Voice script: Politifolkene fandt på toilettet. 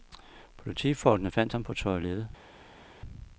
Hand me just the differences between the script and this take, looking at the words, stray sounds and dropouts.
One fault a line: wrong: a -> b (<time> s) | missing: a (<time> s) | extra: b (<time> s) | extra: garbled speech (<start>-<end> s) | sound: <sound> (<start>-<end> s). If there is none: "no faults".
extra: ham (1.5 s)